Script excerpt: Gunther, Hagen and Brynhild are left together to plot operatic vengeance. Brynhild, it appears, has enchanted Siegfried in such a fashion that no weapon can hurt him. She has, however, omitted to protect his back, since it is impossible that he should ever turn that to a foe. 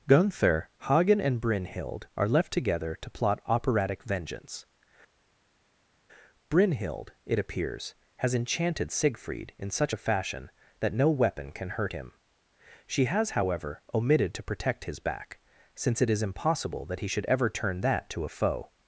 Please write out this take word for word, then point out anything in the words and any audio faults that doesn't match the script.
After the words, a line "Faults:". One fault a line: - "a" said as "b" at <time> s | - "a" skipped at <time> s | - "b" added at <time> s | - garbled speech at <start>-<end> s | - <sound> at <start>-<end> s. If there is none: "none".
Gunther, Hagen and Brynhild are left together to plot operatic vengeance. Brynhild, it appears, has enchanted Siegfried in such a fashion that no weapon can hurt him. She has, however, omitted to protect his back, since it is impossible that he should ever turn that to a foe.
Faults:
none